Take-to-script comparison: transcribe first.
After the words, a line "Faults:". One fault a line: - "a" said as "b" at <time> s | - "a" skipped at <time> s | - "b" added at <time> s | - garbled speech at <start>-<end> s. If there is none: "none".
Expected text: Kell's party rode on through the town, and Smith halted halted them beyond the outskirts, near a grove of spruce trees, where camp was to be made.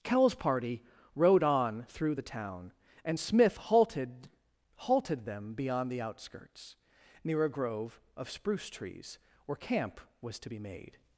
Kell's party rode on through the town, and Smith halted halted them beyond the outskirts, near a grove of spruce trees, where camp was to be made.
Faults:
none